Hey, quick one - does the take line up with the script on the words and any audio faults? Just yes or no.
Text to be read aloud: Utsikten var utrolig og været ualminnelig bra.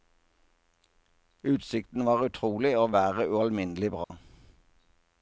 no